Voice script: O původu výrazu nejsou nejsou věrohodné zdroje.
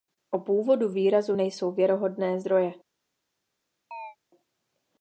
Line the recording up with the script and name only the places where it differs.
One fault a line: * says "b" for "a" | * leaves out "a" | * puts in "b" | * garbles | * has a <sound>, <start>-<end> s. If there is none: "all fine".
* leaves out "nejsou"
* has a chirp, 3.9-4.2 s